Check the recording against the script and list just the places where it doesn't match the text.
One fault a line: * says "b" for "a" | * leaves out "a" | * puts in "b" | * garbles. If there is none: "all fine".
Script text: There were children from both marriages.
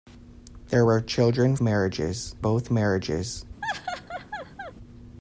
* says "marriages" for "from"